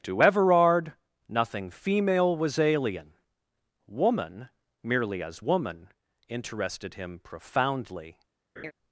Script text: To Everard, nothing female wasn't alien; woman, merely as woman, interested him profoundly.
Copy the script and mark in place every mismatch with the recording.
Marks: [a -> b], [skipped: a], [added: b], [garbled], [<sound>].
To Everard, nothing female [wasn't -> was] alien; woman, merely as woman, interested him profoundly. [laugh]